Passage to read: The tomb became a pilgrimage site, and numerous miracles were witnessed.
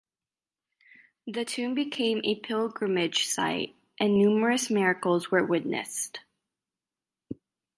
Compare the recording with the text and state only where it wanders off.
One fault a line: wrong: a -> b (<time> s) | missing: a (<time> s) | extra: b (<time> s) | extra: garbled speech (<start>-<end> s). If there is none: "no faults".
no faults